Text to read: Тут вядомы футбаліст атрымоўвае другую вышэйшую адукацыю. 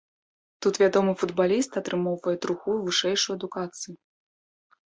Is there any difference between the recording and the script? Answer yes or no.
no